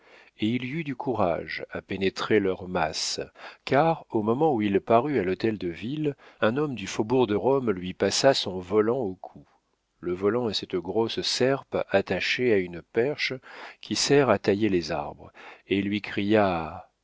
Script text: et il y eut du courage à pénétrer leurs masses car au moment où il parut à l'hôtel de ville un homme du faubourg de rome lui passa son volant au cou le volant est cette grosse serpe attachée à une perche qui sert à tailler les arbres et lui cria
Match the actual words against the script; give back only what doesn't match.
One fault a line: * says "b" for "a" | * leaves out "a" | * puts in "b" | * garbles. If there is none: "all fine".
all fine